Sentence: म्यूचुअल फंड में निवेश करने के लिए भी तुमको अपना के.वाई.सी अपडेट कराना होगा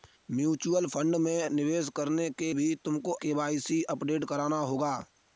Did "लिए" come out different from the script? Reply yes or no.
yes